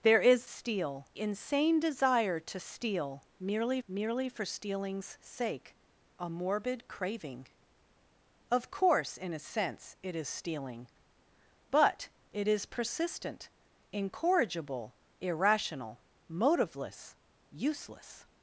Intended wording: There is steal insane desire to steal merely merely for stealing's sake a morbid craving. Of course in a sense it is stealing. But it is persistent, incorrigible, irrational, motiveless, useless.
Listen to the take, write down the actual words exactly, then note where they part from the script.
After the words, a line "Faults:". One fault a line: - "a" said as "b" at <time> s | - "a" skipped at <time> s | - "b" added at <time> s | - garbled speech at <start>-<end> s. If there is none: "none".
There is steal insane desire to steal merely merely for stealing's sake a morbid craving. Of course in a sense it is stealing. But it is persistent, incorrigible, irrational, motiveless, useless.
Faults:
none